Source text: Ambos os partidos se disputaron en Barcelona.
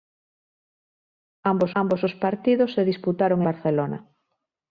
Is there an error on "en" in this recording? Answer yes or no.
yes